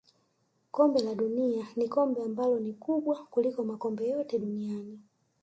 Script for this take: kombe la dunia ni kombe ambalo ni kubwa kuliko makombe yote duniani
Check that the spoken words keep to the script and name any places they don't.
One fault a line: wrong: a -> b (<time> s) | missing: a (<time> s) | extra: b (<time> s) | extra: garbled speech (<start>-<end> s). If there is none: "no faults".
no faults